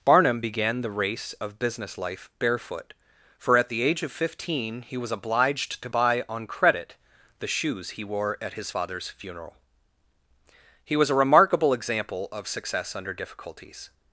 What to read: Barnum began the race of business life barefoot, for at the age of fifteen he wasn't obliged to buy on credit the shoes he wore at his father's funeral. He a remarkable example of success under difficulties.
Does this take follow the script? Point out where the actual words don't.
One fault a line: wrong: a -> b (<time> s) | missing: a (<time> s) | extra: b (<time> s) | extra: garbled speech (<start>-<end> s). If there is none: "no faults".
wrong: wasn't -> was (5.0 s)
extra: was (11.0 s)